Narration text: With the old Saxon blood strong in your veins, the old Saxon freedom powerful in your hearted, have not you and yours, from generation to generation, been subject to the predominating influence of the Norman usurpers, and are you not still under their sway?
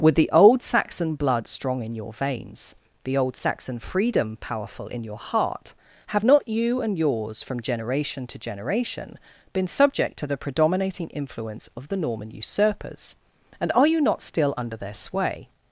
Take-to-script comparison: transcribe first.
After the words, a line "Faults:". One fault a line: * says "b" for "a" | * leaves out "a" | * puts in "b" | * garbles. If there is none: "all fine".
With the old Saxon blood strong in your veins, the old Saxon freedom powerful in your heart, have not you and yours, from generation to generation, been subject to the predominating influence of the Norman usurpers, and are you not still under their sway?
Faults:
* says "heart" for "hearted"